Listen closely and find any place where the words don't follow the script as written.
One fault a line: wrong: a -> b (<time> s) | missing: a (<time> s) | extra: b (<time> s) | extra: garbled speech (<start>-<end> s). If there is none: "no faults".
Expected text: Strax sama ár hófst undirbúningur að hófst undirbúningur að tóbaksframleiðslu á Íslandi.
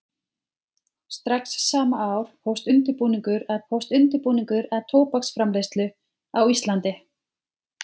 no faults